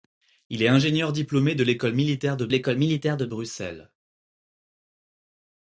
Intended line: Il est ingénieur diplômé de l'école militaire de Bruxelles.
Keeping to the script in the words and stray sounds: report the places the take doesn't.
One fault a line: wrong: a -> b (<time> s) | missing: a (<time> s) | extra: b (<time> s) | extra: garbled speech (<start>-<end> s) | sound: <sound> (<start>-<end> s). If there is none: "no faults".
extra: l'école militaire de (2.5 s)